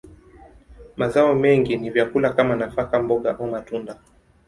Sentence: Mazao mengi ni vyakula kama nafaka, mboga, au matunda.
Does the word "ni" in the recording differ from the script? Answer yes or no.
no